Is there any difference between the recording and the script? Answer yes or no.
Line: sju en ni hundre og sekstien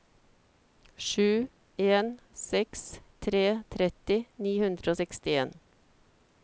yes